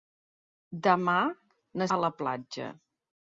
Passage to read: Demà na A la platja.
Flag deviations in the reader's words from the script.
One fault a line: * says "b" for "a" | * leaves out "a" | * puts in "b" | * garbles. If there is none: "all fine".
all fine